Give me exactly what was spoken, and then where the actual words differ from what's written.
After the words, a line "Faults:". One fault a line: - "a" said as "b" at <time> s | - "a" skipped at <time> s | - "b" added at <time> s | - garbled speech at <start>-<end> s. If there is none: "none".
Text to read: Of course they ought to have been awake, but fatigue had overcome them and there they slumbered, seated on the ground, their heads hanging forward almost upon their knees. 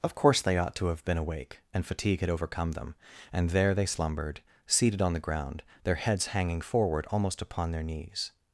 Of course they ought to have been awake, and fatigue had overcome them and there they slumbered, seated on the ground, their heads hanging forward almost upon their knees.
Faults:
- "but" said as "and" at 1.7 s